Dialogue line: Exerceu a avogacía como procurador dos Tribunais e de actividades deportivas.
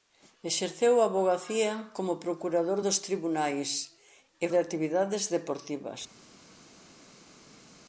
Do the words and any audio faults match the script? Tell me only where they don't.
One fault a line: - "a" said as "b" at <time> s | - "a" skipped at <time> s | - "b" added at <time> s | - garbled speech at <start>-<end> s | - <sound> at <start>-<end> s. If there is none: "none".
none